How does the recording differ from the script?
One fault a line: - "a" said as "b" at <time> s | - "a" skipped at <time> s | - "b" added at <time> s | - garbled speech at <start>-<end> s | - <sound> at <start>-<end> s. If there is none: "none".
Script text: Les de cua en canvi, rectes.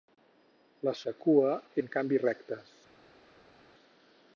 none